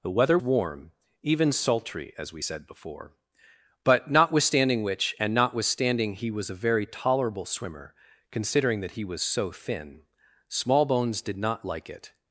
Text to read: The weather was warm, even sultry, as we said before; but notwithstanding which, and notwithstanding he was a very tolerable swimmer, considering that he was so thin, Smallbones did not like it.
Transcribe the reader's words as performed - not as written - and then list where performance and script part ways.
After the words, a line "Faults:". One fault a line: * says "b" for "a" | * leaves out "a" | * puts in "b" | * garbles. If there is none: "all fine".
The weather warm, even sultry, as we said before; but notwithstanding which, and notwithstanding he was a very tolerable swimmer, considering that he was so thin, Smallbones did not like it.
Faults:
* leaves out "was"